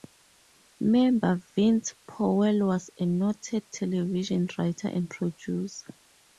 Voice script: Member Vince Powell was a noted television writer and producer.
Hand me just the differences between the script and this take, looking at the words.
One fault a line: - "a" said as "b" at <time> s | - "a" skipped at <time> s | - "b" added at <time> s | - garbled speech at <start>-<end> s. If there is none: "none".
none